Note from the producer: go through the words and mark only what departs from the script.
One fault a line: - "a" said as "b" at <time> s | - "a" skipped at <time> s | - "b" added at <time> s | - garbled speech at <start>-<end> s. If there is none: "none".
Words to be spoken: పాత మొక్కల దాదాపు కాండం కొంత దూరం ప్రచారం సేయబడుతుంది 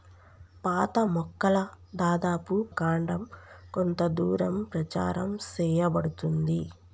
none